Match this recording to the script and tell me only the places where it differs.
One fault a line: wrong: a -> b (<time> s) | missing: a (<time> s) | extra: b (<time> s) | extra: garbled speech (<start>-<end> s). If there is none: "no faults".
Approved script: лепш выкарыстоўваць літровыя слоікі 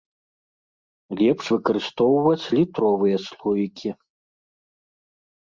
no faults